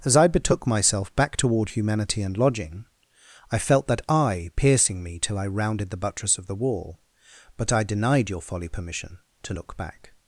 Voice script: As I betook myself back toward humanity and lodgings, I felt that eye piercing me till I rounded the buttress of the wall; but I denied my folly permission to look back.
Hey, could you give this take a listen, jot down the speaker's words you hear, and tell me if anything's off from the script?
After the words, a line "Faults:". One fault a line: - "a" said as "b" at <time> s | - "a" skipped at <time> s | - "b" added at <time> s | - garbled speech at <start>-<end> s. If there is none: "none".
As I betook myself back toward humanity and lodging, I felt that eye piercing me till I rounded the buttress of the wall; but I denied your folly permission to look back.
Faults:
- "lodgings" said as "lodging" at 2.4 s
- "my" said as "your" at 8.3 s